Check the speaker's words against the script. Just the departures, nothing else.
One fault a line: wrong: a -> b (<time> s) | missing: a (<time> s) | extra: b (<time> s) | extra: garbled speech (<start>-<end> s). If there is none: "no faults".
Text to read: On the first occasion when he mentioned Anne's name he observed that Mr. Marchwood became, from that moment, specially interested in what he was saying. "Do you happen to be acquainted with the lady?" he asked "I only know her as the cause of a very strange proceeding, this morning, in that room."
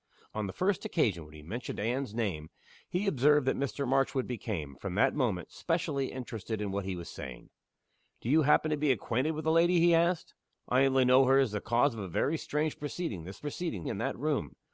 wrong: morning -> proceeding (13.4 s)